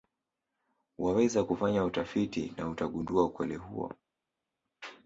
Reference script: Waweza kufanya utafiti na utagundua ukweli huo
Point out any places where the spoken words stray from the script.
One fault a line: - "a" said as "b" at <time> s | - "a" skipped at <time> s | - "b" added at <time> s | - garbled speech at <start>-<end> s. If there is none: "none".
none